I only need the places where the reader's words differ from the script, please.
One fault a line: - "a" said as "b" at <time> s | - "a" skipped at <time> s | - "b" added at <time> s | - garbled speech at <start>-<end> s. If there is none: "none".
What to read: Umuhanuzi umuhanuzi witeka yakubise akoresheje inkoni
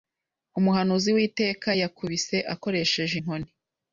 - "umuhanuzi" skipped at 1.1 s